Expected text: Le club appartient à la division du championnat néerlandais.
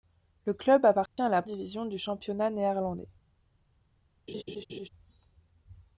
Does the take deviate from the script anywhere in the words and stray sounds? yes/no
yes